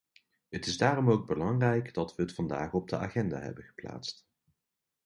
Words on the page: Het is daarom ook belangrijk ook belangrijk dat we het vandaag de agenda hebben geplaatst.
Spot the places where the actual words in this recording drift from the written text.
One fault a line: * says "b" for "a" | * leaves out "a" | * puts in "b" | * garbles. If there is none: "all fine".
* leaves out "ook belangrijk"
* puts in "op"